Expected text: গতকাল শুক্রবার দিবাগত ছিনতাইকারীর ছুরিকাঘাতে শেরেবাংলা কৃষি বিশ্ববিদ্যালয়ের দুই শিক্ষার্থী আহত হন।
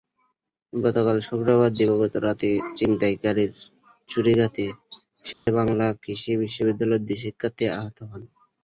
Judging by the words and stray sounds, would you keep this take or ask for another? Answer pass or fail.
fail